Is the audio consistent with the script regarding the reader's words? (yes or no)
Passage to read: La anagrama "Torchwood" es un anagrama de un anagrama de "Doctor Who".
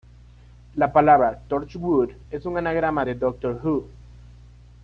no